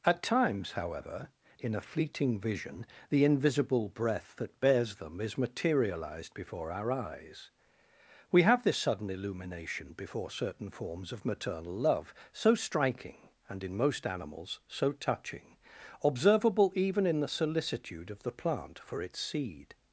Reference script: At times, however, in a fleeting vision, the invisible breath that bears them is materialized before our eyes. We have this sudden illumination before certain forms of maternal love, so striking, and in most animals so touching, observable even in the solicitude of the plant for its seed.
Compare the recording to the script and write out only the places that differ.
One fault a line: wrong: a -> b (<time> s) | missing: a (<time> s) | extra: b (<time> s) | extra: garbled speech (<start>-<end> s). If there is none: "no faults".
no faults